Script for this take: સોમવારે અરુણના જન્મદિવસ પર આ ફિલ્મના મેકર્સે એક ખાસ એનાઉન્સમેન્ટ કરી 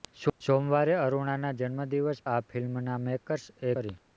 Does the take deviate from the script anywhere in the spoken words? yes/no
yes